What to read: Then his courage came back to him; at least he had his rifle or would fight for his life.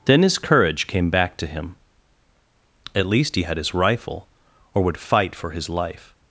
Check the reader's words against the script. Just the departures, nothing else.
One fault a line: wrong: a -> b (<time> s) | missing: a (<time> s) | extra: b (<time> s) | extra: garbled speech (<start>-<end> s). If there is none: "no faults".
no faults